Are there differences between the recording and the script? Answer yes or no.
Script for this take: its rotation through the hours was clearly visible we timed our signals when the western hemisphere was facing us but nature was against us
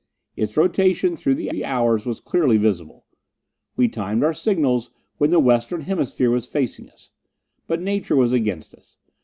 yes